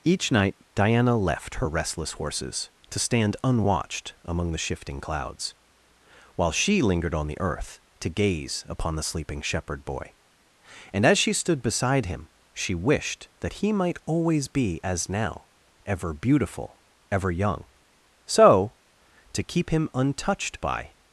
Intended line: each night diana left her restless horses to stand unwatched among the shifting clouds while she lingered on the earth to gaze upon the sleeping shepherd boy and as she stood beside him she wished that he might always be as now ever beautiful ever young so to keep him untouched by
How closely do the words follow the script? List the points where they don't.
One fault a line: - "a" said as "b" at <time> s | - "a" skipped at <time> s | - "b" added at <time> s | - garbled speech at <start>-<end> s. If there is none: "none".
none